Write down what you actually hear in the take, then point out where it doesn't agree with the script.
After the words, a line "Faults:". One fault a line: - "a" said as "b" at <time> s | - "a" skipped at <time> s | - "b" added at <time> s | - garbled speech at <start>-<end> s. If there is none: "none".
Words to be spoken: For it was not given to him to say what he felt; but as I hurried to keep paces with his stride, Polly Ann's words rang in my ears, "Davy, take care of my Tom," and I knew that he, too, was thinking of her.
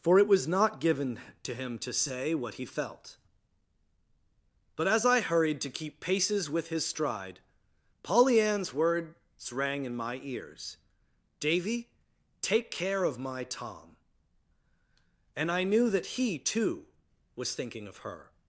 For it was not given to him to say what he felt; but as I hurried to keep paces with his stride, Polly Ann's words rang in my ears, "Davy, take care of my Tom," and I knew that he, too, was thinking of her.
Faults:
none